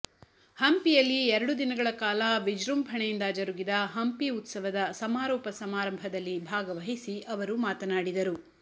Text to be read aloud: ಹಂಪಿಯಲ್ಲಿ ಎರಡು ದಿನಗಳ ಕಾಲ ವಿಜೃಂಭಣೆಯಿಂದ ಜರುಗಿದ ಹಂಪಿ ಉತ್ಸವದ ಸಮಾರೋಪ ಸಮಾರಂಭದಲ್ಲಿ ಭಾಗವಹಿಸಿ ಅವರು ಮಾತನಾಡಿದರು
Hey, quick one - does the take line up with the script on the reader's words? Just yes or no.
yes